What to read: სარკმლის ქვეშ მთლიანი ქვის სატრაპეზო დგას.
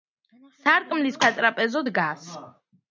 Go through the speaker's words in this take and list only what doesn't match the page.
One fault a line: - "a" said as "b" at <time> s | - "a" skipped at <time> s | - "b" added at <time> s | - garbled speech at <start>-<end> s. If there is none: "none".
- "ქვეშ მთლიანი ქვის" skipped at 1.2 s